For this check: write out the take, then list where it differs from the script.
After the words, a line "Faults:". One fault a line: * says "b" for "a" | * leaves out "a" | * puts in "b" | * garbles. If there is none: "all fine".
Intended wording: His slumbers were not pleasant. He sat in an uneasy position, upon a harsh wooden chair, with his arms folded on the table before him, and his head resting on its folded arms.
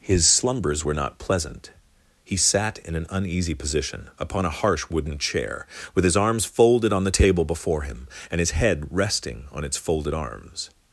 His slumbers were not pleasant. He sat in an uneasy position, upon a harsh wooden chair, with his arms folded on the table before him, and his head resting on its folded arms.
Faults:
all fine